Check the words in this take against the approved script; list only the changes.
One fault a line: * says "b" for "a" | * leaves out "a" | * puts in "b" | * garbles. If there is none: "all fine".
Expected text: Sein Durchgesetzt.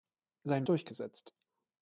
all fine